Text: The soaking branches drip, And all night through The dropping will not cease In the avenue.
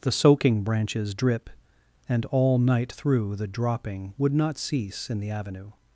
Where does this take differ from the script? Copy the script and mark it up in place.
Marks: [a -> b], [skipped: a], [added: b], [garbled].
The soaking branches drip, And all night through The dropping [will -> would] not cease In the avenue.